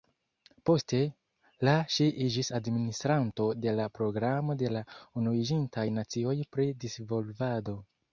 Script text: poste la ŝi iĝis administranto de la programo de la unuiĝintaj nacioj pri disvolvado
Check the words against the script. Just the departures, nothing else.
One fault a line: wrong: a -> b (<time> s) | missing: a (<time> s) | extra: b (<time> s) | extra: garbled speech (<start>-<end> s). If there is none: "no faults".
no faults